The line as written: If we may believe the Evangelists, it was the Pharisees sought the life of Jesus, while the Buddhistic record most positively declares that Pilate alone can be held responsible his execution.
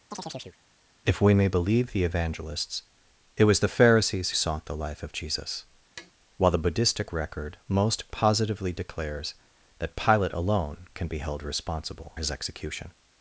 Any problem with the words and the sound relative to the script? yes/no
yes